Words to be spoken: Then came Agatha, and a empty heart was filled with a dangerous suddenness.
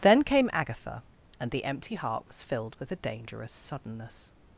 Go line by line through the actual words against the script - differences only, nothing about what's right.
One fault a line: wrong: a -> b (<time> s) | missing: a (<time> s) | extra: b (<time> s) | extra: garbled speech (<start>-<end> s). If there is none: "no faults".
wrong: a -> the (1.5 s)